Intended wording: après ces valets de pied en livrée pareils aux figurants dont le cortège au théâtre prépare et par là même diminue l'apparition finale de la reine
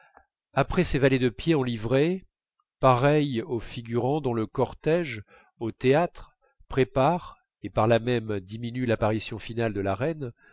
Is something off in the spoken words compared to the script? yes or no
no